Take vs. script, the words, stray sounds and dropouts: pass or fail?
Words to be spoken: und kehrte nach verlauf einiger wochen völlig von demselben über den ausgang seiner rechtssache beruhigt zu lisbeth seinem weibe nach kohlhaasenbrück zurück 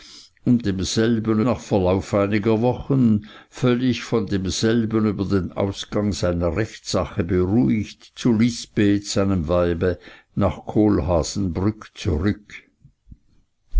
fail